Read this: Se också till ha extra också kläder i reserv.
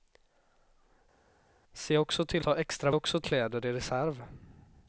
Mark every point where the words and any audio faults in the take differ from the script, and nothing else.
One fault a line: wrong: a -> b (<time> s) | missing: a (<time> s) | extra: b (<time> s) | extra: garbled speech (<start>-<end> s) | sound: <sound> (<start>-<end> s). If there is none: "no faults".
no faults